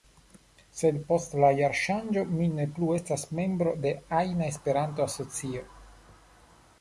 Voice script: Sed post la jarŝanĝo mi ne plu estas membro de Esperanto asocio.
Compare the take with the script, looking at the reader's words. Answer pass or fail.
fail